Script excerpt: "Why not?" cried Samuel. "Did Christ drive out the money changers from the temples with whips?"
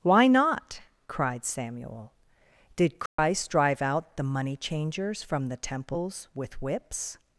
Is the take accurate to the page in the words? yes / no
yes